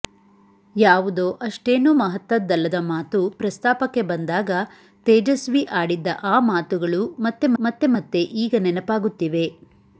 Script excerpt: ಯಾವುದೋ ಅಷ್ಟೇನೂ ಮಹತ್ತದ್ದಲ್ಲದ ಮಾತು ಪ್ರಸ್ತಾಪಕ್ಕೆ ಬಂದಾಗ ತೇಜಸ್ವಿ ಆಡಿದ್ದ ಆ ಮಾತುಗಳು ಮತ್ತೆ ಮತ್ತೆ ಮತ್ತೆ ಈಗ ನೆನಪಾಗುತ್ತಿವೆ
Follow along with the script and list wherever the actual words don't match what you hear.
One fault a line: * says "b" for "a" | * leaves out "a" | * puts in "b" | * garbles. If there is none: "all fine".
all fine